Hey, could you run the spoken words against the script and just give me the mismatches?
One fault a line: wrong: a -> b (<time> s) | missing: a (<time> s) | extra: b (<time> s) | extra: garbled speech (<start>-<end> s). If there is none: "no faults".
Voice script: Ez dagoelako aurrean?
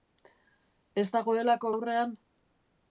no faults